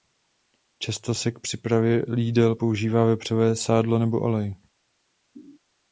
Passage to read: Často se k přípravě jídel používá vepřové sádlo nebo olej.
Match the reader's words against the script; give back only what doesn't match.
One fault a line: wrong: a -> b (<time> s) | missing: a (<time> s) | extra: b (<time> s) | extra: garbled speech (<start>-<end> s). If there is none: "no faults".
no faults